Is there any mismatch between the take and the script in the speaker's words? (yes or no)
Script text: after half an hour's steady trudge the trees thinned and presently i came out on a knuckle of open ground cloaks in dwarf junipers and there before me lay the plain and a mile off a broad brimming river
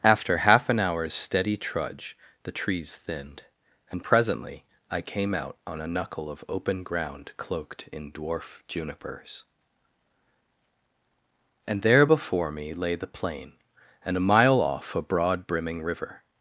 yes